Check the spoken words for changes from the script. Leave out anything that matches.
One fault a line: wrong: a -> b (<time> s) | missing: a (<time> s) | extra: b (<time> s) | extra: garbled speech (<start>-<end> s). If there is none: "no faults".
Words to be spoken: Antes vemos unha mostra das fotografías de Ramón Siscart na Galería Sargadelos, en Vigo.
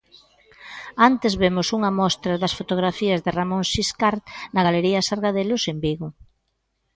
no faults